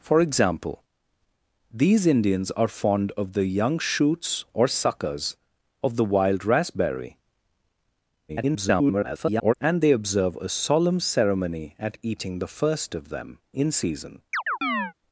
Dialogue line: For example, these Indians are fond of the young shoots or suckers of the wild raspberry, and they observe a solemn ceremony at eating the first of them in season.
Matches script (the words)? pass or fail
fail